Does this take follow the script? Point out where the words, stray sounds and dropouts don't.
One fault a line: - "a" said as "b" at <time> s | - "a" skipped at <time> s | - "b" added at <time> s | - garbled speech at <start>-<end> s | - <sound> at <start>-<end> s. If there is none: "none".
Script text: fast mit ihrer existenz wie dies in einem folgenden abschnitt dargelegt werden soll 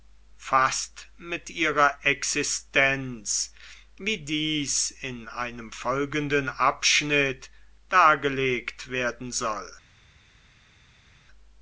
none